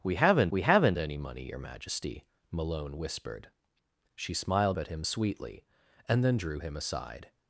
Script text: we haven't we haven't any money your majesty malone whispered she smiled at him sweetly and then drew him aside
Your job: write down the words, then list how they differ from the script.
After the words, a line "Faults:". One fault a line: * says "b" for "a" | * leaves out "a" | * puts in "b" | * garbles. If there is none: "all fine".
we haven't we haven't any money your majesty malone whispered she smiled at him sweetly and then drew him aside
Faults:
all fine